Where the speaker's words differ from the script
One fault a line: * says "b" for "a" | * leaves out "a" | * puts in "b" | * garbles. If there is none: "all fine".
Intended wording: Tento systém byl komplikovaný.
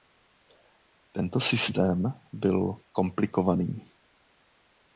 all fine